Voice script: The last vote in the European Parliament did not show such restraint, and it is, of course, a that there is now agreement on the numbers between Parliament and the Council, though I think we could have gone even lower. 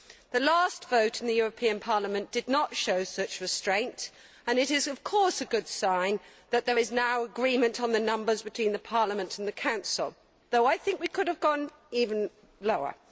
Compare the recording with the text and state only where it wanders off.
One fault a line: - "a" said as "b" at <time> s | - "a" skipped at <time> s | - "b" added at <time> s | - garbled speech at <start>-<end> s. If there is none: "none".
- "good sign" added at 5.5 s